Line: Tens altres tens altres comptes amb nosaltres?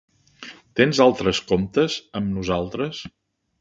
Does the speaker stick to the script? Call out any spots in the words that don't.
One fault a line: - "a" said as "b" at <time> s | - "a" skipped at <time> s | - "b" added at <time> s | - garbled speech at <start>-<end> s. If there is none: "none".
- "tens altres" skipped at 1.4 s